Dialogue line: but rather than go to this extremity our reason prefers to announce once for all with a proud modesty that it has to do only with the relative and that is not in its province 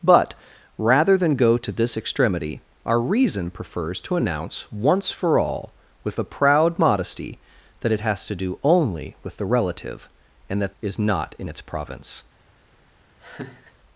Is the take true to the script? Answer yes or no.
yes